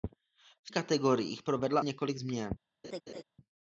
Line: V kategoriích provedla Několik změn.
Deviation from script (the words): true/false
false